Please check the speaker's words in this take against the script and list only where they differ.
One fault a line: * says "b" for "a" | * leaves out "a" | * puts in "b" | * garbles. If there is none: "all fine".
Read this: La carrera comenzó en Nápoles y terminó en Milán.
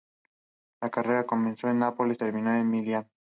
all fine